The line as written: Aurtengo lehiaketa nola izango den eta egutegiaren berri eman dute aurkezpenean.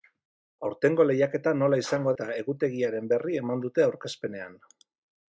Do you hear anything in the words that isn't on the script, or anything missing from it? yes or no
yes